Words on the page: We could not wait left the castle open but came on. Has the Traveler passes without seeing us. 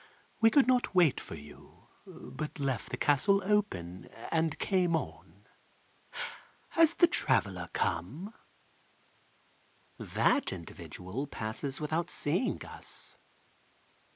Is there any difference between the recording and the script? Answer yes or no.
yes